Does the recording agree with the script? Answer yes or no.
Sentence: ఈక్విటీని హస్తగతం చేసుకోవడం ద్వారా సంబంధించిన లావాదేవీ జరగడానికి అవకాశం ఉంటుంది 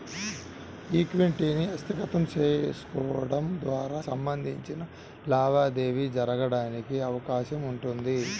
yes